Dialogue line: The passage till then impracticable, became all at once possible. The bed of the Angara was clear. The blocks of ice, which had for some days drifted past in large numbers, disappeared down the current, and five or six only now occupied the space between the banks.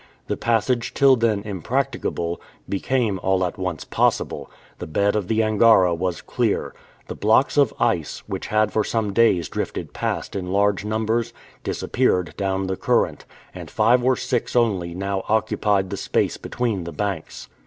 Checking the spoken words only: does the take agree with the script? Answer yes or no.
yes